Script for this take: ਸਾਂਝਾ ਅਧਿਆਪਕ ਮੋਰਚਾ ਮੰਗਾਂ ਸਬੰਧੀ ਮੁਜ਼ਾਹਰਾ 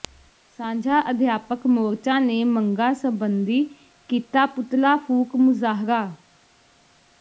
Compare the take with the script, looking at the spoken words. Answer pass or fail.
fail